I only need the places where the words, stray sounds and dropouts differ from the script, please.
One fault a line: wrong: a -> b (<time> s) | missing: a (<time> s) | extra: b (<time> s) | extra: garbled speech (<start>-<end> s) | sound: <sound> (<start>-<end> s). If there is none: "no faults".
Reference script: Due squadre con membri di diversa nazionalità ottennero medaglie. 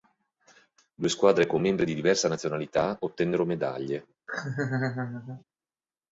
sound: laugh (4.3-5.4 s)